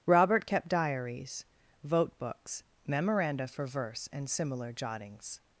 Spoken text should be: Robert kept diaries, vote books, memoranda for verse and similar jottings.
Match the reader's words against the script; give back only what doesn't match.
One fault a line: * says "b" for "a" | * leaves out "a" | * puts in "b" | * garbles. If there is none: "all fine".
all fine